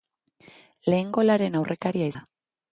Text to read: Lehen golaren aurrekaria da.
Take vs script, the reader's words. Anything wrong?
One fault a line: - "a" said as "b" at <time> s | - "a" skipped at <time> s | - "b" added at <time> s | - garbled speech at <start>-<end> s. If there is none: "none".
none